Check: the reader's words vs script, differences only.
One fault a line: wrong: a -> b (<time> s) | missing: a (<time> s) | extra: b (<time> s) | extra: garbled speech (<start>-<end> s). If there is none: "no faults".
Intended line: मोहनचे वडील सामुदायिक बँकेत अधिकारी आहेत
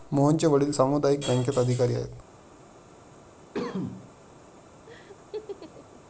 no faults